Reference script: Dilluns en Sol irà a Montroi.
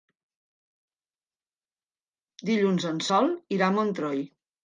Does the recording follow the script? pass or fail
pass